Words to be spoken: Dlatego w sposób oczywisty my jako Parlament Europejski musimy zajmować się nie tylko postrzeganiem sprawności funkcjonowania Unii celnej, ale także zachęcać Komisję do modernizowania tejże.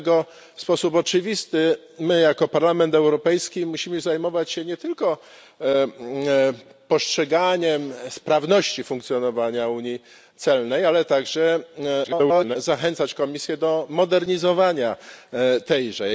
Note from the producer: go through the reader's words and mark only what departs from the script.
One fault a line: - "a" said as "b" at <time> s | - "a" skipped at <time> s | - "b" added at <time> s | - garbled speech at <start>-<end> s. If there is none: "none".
- garbled speech at 12.0-12.6 s